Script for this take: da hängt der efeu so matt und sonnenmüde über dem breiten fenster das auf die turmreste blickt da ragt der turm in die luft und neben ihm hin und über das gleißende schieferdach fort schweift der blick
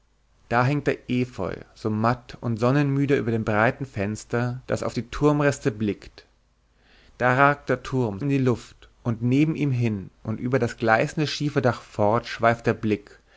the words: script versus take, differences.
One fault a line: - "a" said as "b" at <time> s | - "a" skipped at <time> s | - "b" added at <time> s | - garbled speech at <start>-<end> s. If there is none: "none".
none